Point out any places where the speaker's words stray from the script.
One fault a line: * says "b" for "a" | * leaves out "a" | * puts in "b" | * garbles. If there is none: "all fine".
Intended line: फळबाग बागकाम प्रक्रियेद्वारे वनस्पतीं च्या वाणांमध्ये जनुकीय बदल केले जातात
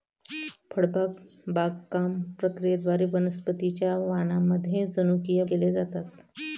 * leaves out "बदल"